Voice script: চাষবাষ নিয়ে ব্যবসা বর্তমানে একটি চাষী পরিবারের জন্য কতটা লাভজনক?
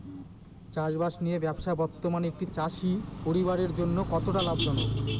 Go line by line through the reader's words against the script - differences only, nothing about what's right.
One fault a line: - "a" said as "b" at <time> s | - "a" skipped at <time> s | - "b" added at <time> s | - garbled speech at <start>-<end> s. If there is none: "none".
none